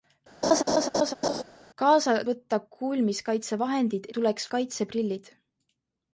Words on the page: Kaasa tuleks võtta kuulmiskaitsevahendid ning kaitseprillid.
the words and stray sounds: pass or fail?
fail